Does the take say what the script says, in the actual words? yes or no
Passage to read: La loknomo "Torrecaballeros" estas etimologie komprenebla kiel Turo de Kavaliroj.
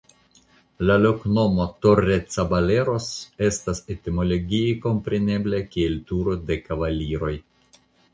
yes